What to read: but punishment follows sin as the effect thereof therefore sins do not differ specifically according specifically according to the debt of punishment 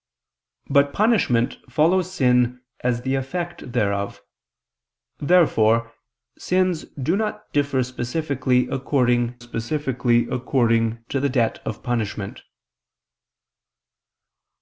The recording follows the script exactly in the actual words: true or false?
true